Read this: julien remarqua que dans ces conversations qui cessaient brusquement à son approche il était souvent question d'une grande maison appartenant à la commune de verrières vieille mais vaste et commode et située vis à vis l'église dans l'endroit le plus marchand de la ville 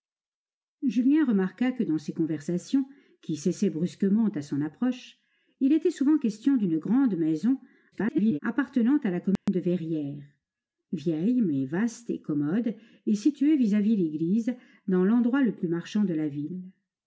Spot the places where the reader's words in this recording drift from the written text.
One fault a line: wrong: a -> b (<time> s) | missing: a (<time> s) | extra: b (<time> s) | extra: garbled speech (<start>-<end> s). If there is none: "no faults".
extra: garbled speech (7.9-8.4 s)